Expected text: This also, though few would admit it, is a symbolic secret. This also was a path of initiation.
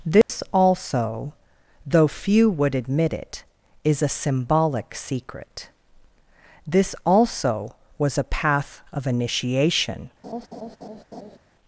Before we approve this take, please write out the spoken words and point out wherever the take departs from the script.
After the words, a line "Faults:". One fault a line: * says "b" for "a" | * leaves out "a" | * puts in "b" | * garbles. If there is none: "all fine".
This also, though few would admit it, is a symbolic secret. This also was a path of initiation.
Faults:
all fine